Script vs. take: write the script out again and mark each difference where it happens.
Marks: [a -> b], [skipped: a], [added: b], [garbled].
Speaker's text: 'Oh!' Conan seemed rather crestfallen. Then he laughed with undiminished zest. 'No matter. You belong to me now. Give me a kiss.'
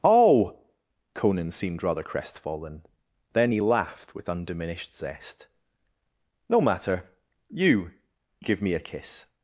'Oh!' Conan seemed rather crestfallen. Then he laughed with undiminished zest. 'No matter. You [skipped: belong to me now.] Give me a kiss.'